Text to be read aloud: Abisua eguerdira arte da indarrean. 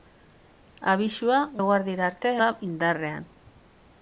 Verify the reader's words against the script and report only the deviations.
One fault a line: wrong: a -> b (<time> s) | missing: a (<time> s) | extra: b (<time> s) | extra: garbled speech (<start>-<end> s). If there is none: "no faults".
no faults